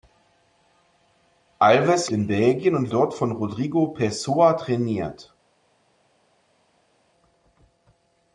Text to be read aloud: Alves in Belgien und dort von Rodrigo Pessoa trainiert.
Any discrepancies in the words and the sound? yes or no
no